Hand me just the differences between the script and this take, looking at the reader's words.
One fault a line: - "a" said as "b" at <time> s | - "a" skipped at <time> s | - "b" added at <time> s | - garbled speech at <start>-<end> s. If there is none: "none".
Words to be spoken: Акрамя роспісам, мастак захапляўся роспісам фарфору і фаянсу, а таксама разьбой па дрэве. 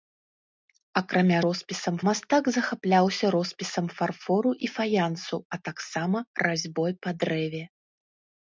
none